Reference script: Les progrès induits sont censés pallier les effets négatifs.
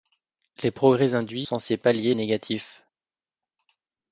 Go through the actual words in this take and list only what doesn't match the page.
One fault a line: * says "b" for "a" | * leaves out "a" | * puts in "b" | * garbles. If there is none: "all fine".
* leaves out "sont"
* leaves out "les effets"